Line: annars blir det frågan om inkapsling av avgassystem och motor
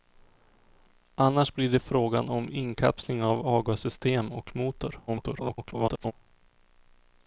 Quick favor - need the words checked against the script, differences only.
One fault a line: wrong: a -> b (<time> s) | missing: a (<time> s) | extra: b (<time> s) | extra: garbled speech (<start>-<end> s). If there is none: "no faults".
extra: garbled speech (5.1-6.1 s)